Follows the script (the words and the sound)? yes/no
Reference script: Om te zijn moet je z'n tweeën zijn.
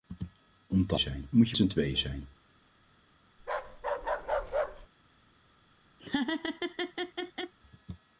no